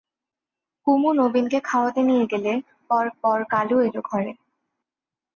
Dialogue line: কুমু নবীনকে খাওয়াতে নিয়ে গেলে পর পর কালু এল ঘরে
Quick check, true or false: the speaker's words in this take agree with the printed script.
true